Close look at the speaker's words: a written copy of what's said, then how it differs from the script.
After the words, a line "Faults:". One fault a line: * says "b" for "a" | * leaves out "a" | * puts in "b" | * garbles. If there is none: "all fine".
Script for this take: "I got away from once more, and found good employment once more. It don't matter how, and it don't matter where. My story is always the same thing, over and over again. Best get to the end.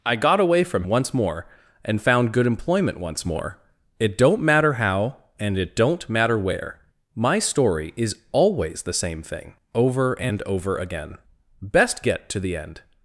"I got away from once more, and found good employment once more. It don't matter how, and it don't matter where. My story is always the same thing, over and over again. Best get to the end.
Faults:
all fine